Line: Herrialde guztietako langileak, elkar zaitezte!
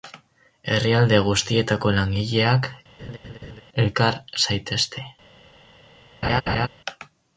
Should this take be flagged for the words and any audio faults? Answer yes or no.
yes